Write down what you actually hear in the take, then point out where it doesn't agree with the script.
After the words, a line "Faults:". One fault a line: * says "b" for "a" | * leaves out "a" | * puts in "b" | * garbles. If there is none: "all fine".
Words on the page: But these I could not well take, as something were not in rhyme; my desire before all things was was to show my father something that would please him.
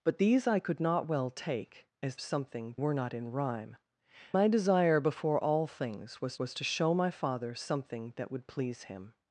But these I could not well take, as something were not in rhyme; my desire before all things was was to show my father something that would please him.
Faults:
all fine